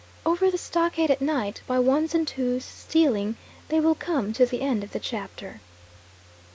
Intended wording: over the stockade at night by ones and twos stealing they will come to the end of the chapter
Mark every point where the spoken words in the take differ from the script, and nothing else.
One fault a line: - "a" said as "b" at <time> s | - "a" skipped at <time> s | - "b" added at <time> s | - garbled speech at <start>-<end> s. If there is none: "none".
none